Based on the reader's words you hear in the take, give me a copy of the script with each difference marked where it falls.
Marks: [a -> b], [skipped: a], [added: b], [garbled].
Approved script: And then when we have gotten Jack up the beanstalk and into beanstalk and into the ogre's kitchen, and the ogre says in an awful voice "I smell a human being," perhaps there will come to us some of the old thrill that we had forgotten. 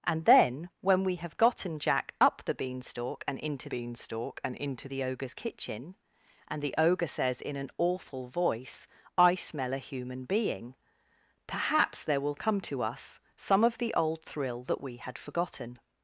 And then when we have gotten Jack up the beanstalk and into beanstalk and into the ogre's kitchen, and the ogre says in an awful voice "I smell a human being," perhaps there will come to us some of the old thrill that we had forgotten.